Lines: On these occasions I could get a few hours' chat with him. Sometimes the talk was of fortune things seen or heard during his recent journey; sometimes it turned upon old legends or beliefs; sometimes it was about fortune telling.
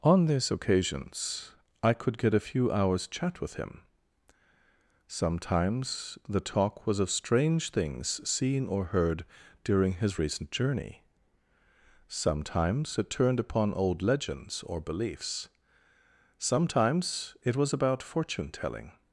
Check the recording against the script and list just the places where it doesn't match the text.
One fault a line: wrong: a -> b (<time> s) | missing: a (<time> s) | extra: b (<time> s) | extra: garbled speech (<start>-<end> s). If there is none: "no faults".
wrong: fortune -> strange (7.1 s)